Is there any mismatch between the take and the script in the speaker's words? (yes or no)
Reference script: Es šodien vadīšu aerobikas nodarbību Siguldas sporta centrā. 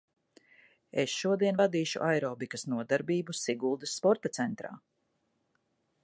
no